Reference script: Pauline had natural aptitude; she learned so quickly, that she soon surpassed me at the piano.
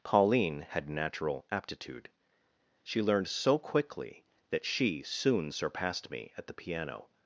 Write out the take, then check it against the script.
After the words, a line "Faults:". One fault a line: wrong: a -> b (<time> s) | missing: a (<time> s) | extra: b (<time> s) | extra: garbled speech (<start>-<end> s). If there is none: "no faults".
Pauline had natural aptitude; she learned so quickly, that she soon surpassed me at the piano.
Faults:
no faults